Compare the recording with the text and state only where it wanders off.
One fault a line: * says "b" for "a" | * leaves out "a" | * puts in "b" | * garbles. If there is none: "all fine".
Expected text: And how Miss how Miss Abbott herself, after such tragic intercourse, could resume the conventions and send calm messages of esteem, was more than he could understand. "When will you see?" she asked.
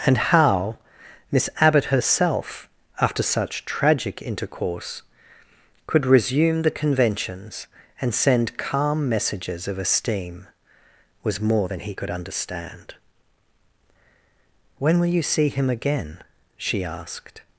* leaves out "how Miss"
* puts in "him again"